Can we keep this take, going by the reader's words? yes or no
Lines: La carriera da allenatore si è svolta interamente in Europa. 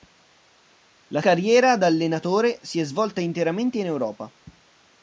yes